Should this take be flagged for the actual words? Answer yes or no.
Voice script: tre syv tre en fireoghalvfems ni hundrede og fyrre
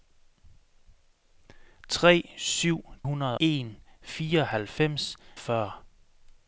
yes